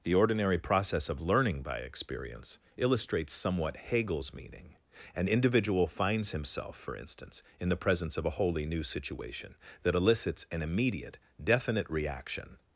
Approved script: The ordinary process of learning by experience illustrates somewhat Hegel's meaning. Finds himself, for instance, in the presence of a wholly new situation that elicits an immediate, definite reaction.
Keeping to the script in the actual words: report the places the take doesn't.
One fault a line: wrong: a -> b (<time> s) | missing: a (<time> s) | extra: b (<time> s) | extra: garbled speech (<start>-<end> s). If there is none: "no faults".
extra: An individual (5.2 s)